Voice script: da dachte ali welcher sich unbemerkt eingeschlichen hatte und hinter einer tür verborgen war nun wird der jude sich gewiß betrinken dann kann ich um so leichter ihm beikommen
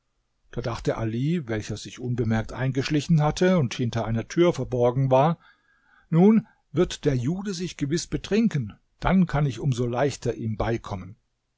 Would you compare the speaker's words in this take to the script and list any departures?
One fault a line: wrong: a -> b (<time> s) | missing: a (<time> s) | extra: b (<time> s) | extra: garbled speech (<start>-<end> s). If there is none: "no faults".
no faults